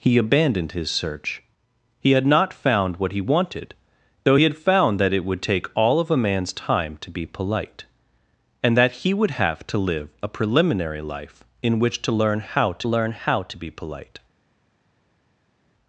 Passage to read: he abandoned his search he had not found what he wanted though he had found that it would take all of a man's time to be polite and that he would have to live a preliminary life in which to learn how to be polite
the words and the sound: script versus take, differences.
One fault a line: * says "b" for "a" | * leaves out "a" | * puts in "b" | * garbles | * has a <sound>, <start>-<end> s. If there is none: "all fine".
* puts in "learn how to"